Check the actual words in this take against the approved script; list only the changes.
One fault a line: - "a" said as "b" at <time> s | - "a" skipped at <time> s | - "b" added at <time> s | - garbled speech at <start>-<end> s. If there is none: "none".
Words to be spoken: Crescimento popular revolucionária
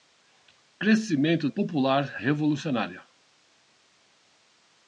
none